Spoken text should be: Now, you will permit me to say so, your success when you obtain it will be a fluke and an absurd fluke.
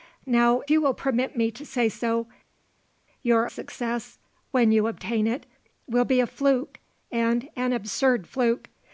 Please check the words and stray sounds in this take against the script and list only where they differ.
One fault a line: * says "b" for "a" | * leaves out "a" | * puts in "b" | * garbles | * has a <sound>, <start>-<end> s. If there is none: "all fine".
all fine